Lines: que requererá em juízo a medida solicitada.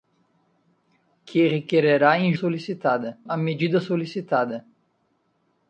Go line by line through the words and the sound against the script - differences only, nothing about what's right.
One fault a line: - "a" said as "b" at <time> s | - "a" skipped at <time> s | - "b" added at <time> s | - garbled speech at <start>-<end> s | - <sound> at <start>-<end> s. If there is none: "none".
- "juízo" said as "solicitada" at 2.3 s